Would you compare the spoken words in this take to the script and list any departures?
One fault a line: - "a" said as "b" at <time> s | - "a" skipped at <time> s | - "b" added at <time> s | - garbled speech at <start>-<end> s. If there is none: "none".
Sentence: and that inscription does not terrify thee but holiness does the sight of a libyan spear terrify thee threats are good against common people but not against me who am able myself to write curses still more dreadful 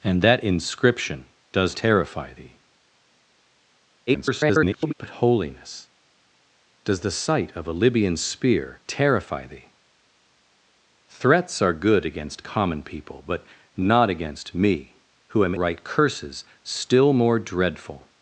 - "not" skipped at 1.8 s
- garbled speech at 4.1-4.9 s
- "able myself to" skipped at 15.5 s